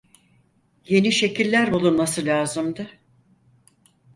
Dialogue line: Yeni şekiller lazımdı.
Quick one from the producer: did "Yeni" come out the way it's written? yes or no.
yes